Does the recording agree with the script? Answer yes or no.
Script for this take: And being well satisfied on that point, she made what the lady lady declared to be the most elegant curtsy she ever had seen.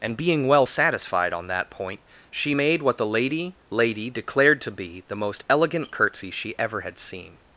yes